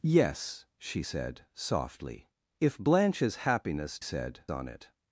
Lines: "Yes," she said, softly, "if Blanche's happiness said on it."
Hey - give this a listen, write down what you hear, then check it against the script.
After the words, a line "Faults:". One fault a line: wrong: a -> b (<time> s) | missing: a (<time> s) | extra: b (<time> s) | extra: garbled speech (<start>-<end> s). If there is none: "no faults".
"Yes," she said, softly, "if Blanche's happiness said on it."
Faults:
no faults